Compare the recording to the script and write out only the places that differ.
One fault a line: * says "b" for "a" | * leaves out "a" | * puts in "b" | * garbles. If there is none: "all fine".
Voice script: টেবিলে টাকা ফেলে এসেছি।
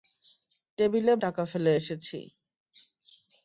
all fine